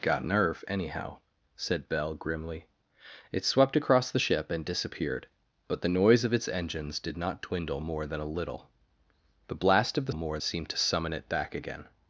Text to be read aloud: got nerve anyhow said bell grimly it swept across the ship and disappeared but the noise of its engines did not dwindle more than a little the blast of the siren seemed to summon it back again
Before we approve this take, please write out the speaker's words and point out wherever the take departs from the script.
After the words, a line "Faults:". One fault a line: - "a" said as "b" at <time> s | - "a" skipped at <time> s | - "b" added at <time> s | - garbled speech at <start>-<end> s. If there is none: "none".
got nerve anyhow said bell grimly it swept across the ship and disappeared but the noise of its engines did not dwindle more than a little the blast of the more seemed to summon it back again
Faults:
- "siren" said as "more" at 10.1 s